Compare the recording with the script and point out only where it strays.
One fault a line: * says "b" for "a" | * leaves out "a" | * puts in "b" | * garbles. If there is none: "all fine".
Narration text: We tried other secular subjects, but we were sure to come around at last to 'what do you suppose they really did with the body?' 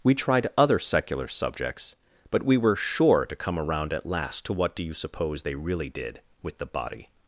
all fine